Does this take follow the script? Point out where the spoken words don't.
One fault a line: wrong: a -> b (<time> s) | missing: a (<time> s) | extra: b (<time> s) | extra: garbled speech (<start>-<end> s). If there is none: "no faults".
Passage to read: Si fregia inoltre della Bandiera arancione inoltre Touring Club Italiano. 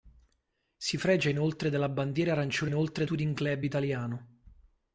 no faults